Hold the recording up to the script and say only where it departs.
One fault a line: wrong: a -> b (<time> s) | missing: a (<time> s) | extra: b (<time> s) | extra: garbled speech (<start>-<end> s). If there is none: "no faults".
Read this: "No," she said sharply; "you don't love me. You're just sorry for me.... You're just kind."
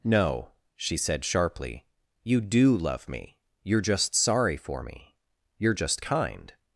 wrong: don't -> do (2.4 s)